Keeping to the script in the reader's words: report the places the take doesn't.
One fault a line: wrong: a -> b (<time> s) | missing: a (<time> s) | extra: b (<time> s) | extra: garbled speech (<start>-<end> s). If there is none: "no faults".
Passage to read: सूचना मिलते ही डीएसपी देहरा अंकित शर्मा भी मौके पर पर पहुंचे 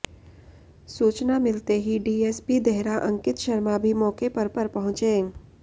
no faults